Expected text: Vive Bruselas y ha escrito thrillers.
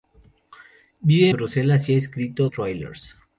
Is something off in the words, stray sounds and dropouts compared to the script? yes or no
no